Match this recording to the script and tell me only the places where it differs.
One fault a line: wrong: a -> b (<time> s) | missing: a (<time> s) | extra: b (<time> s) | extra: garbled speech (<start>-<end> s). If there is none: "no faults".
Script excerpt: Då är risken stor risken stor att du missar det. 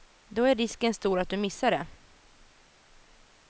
missing: risken stor (1.2 s)